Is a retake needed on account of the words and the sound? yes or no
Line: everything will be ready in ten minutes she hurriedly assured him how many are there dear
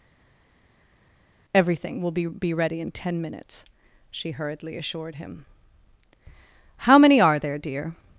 yes